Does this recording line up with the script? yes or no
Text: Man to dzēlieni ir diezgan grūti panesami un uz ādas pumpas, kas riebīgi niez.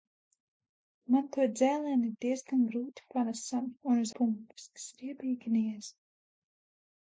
no